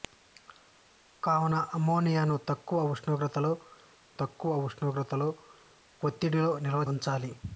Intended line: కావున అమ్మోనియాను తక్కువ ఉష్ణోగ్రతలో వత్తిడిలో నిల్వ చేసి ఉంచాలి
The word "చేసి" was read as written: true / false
false